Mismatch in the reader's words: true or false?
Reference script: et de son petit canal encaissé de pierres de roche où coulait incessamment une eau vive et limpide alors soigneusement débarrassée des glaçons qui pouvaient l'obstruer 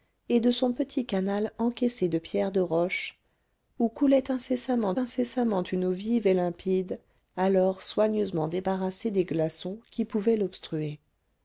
true